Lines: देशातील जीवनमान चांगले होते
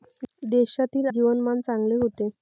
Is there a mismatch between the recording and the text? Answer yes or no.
no